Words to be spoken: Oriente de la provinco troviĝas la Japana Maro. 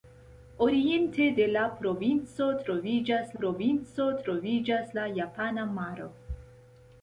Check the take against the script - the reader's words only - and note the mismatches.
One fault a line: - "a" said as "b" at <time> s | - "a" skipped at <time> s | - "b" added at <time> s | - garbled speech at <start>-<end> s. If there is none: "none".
- "provinco troviĝas" added at 3.4 s